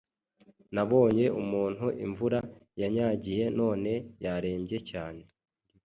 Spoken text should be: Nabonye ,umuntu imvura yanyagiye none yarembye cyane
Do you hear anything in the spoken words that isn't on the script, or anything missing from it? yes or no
no